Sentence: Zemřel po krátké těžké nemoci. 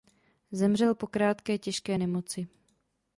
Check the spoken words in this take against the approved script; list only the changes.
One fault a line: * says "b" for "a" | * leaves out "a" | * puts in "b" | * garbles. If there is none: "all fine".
all fine